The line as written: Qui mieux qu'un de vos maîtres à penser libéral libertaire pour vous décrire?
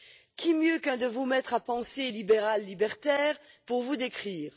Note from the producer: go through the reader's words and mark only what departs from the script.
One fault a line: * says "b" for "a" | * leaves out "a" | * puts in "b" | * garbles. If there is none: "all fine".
all fine